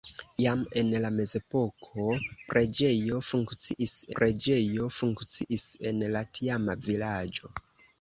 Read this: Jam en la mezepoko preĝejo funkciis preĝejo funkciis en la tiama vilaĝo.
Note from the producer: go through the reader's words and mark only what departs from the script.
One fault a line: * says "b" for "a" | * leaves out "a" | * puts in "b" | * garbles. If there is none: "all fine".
all fine